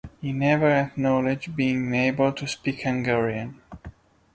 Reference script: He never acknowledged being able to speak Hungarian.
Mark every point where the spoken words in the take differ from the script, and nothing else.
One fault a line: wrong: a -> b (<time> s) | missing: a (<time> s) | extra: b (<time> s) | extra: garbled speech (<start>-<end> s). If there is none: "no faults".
no faults